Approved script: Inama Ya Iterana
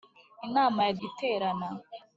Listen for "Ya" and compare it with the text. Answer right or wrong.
right